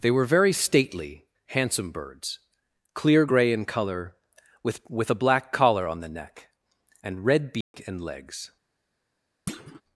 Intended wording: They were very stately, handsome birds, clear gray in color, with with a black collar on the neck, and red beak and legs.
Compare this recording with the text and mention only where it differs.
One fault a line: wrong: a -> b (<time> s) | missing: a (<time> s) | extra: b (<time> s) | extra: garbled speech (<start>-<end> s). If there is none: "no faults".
no faults